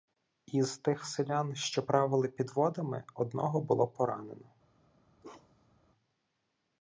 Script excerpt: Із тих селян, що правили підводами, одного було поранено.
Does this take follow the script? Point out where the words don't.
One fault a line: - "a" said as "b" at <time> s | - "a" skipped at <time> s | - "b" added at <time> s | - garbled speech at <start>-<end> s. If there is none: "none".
none